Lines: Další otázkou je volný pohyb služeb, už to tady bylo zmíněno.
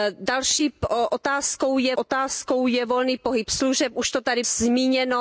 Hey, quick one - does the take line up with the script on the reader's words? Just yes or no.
no